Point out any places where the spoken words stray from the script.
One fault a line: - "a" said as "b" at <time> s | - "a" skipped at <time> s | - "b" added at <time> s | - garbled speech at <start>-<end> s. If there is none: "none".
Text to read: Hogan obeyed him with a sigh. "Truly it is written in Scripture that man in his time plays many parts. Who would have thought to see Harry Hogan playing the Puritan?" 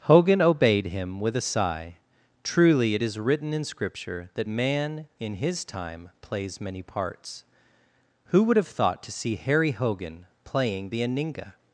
- "Puritan" said as "Aninga" at 11.0 s